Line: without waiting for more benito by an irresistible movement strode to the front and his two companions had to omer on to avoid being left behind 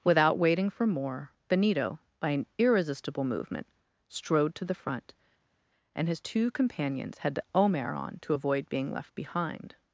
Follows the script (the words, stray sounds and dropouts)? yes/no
yes